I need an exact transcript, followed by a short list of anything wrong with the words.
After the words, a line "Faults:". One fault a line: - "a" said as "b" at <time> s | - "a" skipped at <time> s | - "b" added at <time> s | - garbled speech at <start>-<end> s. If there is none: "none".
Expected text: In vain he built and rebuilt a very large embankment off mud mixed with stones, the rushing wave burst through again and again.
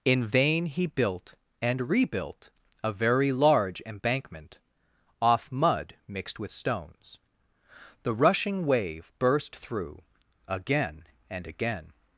In vain he built and rebuilt a very large embankment off mud mixed with stones, the rushing wave burst through again and again.
Faults:
none